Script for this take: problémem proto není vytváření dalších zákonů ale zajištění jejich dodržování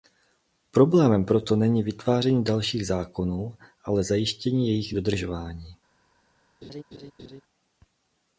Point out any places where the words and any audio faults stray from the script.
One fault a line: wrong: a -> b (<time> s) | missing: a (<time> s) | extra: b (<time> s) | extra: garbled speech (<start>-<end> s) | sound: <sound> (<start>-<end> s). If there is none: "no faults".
sound: laugh (6.6-7.4 s)